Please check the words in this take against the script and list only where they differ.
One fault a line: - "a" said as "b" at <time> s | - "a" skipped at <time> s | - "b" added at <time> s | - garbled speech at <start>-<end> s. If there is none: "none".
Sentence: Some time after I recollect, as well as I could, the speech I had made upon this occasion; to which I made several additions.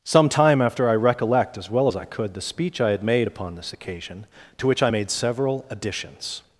none